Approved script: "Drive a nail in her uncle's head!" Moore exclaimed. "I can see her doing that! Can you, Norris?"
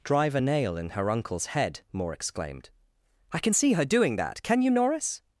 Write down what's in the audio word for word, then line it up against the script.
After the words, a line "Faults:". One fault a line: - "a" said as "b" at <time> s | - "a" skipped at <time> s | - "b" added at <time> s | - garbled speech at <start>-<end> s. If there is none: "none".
"Drive a nail in her uncle's head!" Moore exclaimed. "I can see her doing that! Can you, Norris?"
Faults:
none